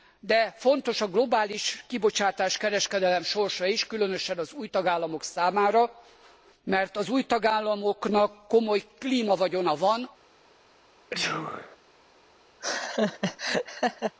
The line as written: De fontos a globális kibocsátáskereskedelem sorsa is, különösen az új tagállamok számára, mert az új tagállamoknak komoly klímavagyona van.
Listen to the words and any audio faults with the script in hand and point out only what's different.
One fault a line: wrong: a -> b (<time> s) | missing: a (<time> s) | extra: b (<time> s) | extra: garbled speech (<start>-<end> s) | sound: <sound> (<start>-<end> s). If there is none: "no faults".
sound: sneeze (11.1-11.8 s)
sound: laugh (12.6-14.2 s)